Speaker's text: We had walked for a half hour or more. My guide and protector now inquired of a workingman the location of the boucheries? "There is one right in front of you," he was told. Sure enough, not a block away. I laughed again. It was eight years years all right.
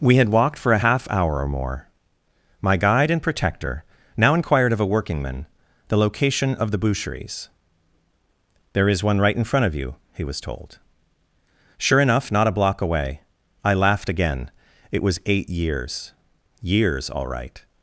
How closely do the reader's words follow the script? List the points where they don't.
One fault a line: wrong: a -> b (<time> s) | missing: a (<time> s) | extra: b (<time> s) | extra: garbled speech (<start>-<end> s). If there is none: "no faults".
no faults